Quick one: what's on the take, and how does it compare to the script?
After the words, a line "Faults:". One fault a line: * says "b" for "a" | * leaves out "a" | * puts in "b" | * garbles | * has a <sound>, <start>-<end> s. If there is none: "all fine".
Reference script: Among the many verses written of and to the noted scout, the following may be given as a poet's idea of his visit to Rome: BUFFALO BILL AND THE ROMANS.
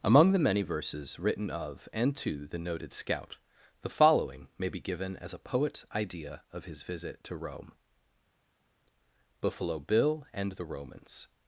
Among the many verses written of and to the noted scout, the following may be given as a poet's idea of his visit to Rome: BUFFALO BILL AND THE ROMANS.
Faults:
all fine